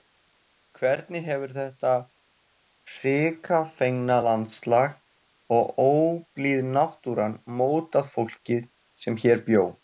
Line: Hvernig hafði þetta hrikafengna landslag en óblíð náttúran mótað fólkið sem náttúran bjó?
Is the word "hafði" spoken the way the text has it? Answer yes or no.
no